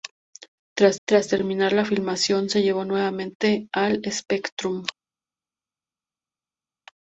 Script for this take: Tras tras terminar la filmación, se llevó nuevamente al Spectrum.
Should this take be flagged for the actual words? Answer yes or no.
no